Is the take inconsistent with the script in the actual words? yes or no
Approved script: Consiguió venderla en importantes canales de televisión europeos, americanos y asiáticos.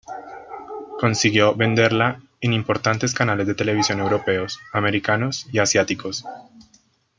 no